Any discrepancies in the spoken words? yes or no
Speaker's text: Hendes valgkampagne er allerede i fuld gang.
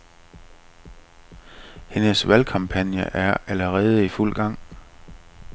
no